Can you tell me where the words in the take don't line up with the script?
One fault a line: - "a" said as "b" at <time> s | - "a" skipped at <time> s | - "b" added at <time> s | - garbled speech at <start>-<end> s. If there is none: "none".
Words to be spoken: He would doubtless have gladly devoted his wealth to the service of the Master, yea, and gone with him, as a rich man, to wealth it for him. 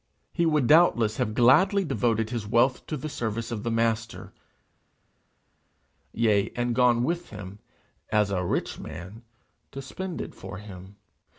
- "wealth" said as "spend" at 9.8 s